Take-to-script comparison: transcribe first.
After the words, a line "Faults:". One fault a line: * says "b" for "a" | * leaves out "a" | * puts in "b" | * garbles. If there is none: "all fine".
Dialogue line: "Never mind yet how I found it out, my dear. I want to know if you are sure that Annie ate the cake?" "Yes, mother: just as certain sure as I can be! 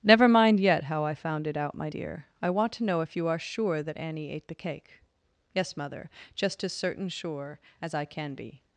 "Never mind yet how I found it out, my dear. I want to know if you are sure that Annie ate the cake?" "Yes, mother: just as certain sure as I can be!
Faults:
all fine